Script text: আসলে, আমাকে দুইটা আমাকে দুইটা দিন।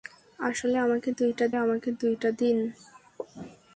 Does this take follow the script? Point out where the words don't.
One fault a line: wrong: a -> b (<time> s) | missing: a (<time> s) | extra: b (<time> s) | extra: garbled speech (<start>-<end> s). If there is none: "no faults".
no faults